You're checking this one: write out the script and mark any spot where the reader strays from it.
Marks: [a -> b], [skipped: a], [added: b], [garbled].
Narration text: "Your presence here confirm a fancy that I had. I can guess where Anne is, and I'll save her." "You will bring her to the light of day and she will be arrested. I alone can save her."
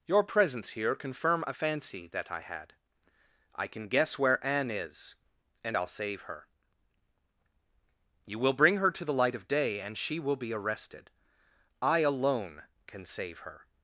"Your presence here confirm a fancy that I had. I can guess where Anne is, and I'll save her." "You will bring her to the light of day and she will be arrested. I alone can save her."